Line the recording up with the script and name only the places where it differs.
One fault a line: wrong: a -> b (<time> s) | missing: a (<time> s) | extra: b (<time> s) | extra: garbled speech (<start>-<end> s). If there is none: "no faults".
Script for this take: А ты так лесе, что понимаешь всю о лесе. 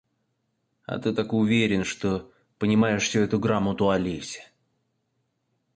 wrong: лесе -> уверен (1.3 s)
extra: эту грамоту (3.2 s)